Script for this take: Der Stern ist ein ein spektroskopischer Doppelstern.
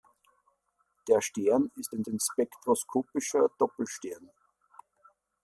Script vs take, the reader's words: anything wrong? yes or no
no